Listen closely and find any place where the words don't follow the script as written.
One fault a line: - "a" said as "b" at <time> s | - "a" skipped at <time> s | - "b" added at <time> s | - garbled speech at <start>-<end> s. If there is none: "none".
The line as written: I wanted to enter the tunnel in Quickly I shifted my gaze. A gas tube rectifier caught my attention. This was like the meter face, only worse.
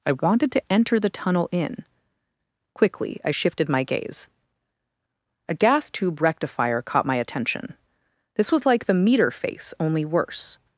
none